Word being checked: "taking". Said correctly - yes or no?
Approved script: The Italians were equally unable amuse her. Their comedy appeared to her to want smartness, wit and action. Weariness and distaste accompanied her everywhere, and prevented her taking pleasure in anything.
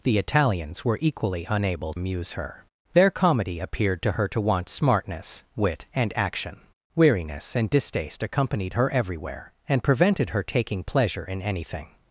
yes